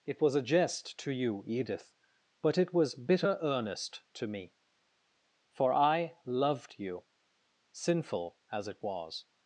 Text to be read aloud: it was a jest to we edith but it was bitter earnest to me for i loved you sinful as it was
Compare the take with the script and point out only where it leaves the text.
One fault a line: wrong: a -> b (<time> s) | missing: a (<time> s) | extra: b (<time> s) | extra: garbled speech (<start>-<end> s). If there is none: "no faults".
wrong: we -> you (1.1 s)